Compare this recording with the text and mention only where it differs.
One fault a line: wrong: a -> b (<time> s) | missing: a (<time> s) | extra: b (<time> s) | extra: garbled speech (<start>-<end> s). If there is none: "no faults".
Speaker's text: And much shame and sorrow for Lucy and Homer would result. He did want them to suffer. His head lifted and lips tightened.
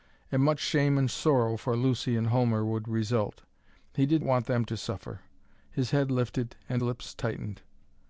no faults